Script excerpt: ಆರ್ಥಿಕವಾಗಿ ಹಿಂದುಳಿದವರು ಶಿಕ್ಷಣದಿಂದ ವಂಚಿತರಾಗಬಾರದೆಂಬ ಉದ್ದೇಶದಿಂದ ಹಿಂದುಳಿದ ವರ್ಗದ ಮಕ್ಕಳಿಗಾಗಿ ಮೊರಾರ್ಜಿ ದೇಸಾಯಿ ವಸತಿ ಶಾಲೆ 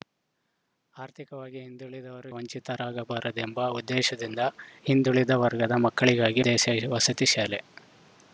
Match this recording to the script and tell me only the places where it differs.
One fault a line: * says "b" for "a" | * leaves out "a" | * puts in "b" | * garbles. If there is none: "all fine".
* leaves out "ಶಿಕ್ಷಣದಿಂದ"
* leaves out "ಮೊರಾರ್ಜಿ"